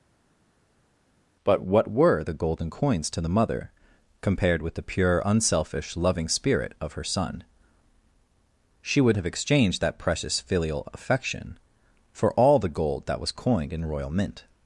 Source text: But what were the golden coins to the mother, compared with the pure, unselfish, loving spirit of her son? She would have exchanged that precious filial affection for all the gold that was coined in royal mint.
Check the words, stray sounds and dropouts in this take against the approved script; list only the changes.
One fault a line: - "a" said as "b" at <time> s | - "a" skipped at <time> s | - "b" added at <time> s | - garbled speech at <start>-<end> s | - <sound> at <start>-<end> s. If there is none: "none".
none